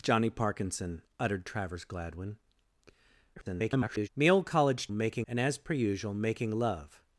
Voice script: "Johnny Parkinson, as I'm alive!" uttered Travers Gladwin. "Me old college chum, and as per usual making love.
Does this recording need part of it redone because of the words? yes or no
yes